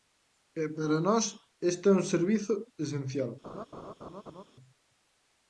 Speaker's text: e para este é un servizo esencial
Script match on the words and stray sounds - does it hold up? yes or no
no